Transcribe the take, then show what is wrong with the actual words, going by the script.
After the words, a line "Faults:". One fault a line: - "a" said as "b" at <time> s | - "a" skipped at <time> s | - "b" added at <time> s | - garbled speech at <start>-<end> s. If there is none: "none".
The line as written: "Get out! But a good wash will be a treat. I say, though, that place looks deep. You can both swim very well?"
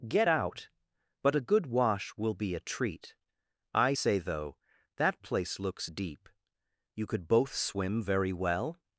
"Get out! But a good wash will be a treat. I say, though, that place looks deep. You could both swim very well?"
Faults:
- "can" said as "could" at 7.1 s